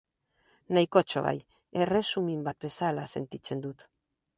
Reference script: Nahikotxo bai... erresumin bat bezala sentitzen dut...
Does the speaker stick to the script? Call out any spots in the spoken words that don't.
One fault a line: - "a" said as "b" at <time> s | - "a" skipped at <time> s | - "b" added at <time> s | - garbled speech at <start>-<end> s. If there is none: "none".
none